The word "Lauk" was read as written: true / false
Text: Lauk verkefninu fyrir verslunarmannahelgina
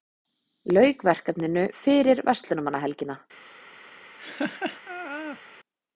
true